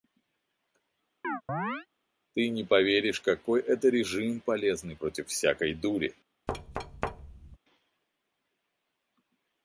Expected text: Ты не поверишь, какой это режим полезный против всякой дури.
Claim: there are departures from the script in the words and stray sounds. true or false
true